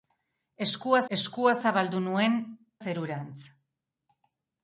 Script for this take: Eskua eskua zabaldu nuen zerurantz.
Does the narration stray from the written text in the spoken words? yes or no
no